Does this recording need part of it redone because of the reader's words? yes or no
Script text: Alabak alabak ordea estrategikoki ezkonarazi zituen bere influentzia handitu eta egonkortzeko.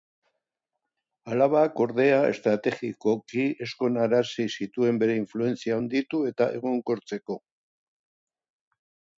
yes